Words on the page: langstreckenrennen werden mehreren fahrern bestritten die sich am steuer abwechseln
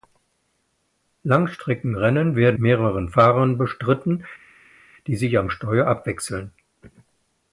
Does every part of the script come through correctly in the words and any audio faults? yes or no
yes